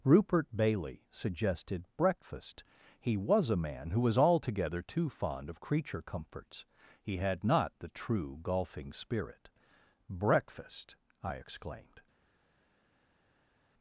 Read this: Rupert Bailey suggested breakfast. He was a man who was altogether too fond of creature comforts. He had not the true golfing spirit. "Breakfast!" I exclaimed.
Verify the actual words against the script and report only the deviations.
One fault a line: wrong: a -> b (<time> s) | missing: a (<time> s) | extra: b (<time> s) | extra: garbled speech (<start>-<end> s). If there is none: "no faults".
no faults